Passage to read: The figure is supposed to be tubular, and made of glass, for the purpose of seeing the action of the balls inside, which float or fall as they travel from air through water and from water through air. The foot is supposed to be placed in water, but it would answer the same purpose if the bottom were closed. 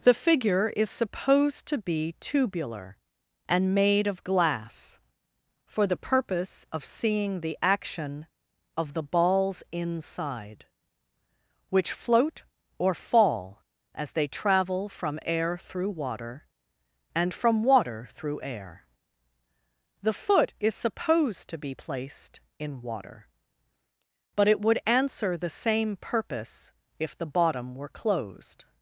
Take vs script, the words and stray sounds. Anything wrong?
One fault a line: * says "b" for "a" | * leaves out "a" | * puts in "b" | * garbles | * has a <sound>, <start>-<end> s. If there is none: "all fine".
all fine